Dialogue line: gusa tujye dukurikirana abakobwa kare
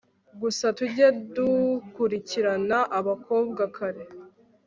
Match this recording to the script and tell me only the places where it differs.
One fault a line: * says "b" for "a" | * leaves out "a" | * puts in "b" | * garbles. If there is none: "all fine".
all fine